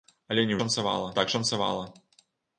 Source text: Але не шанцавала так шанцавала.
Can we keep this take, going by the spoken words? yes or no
yes